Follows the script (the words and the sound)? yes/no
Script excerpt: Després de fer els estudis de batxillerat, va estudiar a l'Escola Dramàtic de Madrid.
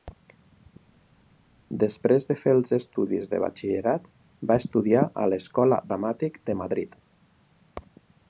yes